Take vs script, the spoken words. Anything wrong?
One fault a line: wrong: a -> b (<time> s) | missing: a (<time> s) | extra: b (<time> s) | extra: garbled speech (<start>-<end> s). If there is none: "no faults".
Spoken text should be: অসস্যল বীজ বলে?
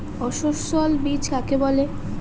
extra: কাকে (1.3 s)